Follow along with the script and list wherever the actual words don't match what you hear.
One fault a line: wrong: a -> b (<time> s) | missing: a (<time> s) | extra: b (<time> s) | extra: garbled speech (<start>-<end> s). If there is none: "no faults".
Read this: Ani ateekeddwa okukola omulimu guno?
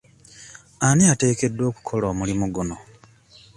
no faults